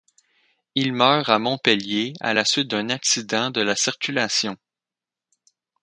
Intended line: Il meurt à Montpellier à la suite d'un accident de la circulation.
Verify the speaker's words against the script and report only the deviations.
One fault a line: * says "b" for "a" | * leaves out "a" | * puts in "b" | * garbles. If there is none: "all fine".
all fine